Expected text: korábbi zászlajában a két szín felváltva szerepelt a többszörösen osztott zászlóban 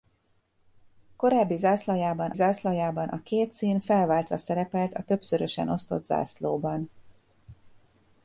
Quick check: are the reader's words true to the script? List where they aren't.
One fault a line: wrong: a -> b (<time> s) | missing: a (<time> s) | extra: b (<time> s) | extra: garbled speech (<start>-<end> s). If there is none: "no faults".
extra: zászlajában (2.3 s)